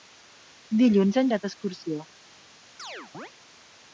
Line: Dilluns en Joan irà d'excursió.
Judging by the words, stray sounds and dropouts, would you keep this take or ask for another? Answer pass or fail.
fail